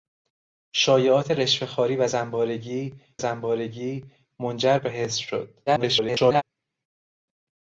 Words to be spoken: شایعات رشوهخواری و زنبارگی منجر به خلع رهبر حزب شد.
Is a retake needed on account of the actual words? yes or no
yes